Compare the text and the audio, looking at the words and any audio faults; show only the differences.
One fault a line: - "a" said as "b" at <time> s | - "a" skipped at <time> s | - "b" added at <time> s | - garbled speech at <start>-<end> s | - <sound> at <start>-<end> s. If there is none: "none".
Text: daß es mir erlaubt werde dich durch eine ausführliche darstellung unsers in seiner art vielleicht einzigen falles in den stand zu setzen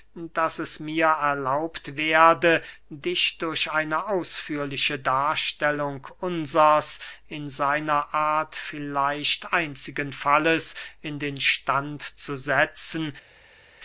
none